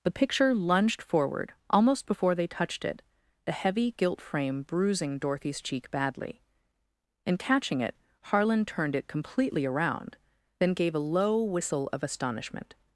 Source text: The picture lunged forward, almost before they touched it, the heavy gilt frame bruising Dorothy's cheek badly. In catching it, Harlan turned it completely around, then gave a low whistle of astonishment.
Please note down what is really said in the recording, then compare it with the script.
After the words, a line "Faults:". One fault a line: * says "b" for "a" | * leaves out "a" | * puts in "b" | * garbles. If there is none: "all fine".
The picture lunged forward, almost before they touched it, the heavy gilt frame bruising Dorothy's cheek badly. In catching it, Harlan turned it completely around, then gave a low whistle of astonishment.
Faults:
all fine